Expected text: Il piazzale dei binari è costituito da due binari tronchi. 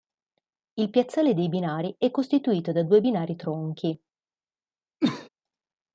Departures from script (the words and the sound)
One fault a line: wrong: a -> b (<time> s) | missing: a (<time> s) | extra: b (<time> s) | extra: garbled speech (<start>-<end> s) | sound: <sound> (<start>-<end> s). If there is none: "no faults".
sound: cough (5.0-5.3 s)